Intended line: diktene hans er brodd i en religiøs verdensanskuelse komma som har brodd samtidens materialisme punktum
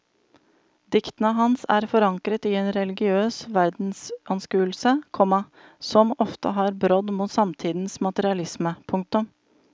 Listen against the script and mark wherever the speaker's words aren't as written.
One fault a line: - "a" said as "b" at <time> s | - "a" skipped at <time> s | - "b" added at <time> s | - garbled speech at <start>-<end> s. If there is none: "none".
- "brodd" said as "forankret" at 1.9 s
- "ofte" added at 6.3 s
- "mot" added at 7.2 s